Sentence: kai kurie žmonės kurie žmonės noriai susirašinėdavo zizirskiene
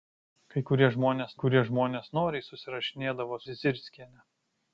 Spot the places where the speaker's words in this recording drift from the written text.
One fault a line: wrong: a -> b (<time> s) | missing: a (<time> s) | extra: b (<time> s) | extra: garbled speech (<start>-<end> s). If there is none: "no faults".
no faults